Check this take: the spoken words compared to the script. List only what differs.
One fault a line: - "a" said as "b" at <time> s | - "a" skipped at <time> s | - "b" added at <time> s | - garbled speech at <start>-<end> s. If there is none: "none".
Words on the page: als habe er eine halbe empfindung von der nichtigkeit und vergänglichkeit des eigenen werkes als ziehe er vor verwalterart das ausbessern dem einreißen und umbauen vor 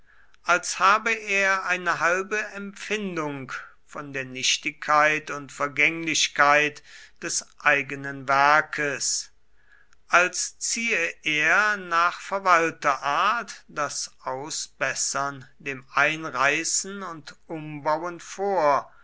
- "vor" said as "nach" at 11.7 s